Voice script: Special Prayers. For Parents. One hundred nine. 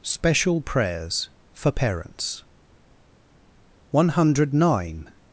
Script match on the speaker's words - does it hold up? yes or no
yes